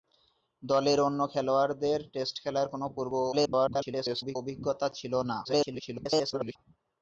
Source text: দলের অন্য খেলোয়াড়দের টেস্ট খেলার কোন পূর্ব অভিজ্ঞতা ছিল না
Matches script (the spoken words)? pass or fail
fail